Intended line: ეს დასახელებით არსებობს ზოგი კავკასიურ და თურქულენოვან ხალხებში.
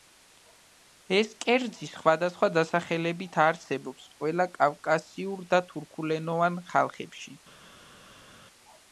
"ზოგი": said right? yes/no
no